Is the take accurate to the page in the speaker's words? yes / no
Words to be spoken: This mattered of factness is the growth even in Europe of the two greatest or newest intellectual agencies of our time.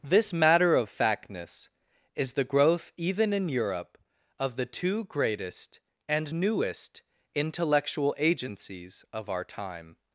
no